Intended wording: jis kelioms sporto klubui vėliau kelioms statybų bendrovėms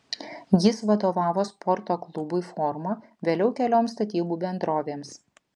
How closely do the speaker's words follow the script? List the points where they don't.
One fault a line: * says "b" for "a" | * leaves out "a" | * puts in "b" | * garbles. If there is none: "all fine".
* says "vadovavo" for "kelioms"
* puts in "forma"